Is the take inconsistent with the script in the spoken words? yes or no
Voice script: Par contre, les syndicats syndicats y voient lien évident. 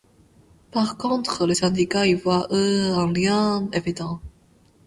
yes